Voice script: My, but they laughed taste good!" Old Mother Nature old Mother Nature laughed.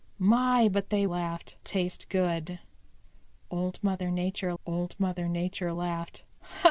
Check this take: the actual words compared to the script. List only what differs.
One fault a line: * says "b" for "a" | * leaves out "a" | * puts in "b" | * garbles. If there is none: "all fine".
all fine